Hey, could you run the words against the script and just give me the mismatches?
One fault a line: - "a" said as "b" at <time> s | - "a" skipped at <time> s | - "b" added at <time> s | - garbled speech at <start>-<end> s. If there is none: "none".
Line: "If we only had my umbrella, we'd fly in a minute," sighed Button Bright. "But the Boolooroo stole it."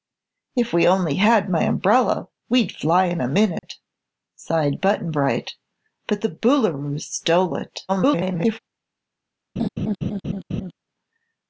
- garbled speech at 7.9-8.6 s